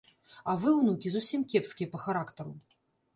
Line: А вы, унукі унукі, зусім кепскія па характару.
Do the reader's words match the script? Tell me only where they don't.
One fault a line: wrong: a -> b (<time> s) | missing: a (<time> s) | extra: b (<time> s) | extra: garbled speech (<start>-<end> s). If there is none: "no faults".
missing: унукі (1.1 s)